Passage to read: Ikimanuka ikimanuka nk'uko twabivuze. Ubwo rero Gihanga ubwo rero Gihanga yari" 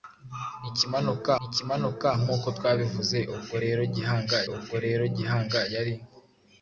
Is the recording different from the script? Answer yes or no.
no